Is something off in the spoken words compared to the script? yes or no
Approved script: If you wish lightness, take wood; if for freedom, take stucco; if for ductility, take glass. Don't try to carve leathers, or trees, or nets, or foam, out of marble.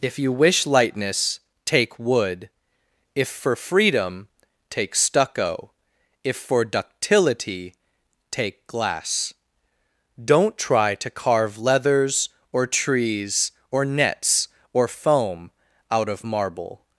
no